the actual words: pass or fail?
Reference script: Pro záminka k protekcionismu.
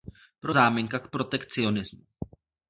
pass